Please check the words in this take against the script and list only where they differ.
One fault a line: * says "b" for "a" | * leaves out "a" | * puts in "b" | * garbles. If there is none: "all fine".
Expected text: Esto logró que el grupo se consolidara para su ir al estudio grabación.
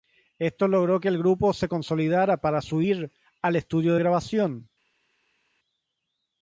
all fine